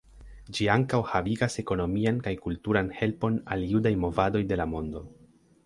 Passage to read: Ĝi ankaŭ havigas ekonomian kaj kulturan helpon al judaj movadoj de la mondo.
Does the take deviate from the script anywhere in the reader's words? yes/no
no